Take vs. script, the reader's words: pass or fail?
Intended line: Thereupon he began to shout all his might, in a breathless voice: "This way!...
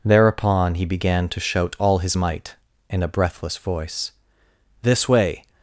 pass